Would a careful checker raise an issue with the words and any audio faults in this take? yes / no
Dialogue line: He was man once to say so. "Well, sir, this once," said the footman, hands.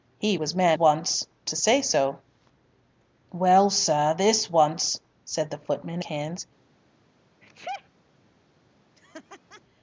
yes